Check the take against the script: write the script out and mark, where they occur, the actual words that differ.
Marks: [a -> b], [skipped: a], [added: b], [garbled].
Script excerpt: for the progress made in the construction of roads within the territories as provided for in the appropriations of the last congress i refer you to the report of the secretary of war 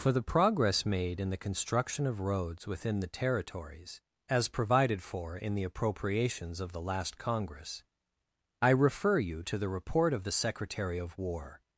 for the progress made in the construction of roads within the territories as provided for in the appropriations of the last congress i refer you to the report of the secretary of war